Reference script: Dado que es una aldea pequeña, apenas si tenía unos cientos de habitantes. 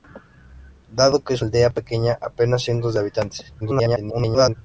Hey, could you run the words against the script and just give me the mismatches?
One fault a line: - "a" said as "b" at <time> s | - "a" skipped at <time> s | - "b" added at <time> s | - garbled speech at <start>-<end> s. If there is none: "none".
- "una" skipped at 1.4 s
- "si tenía unos" skipped at 2.6 s
- garbled speech at 3.6-4.6 s